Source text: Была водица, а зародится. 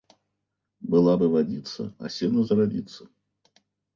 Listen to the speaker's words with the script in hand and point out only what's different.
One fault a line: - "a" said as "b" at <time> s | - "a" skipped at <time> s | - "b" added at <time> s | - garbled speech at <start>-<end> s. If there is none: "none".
- "бы" added at 1.1 s
- "сено" added at 2.1 s